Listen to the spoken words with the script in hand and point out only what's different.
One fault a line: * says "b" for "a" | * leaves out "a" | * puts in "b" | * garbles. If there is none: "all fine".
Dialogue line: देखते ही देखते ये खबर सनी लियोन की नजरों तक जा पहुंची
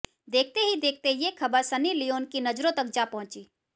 all fine